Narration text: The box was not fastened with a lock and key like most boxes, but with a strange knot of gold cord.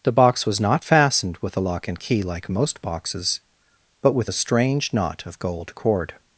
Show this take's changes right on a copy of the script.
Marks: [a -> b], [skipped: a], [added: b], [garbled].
The box was not fastened with a lock and key like most boxes, but with a strange knot of gold cord.